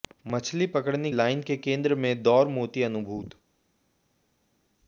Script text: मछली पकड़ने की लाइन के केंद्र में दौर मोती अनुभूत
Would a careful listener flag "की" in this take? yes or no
yes